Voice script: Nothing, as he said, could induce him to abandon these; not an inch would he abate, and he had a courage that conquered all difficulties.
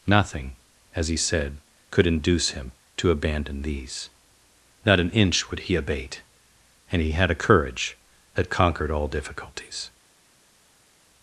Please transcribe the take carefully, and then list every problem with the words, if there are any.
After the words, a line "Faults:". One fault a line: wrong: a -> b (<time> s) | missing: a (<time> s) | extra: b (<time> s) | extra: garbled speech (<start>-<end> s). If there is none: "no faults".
Nothing, as he said, could induce him to abandon these; not an inch would he abate, and he had a courage that conquered all difficulties.
Faults:
no faults